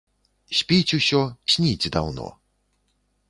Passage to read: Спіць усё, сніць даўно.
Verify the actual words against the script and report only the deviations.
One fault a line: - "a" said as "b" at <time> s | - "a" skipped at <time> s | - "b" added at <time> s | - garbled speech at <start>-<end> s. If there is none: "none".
none